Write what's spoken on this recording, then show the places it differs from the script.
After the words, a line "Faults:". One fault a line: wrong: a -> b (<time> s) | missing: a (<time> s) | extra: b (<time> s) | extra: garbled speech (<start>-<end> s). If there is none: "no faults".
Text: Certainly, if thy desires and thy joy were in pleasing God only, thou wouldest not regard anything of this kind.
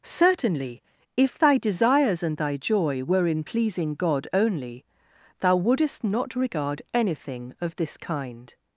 Certainly, if thy desires and thy joy were in pleasing God only, thou wouldest not regard anything of this kind.
Faults:
no faults